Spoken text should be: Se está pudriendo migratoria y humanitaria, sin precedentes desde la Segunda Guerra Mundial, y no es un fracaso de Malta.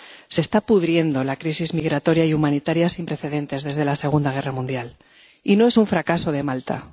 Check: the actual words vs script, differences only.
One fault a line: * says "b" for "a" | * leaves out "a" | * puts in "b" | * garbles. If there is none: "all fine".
* puts in "la crisis"